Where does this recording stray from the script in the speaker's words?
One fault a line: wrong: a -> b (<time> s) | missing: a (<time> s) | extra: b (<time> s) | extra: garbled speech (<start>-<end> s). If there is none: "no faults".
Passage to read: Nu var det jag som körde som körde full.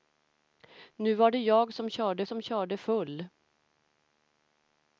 no faults